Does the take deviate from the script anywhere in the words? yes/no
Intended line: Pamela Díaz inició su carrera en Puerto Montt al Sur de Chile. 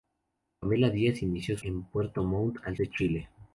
yes